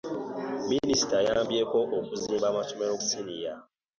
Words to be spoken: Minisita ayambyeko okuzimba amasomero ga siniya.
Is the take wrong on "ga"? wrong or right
wrong